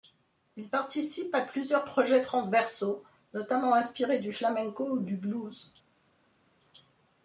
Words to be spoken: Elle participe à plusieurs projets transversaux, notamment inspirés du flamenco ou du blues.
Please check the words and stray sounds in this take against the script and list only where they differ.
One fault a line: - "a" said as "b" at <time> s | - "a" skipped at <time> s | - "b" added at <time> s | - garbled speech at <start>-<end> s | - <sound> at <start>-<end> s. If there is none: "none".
- "Elle" said as "Il" at 0.6 s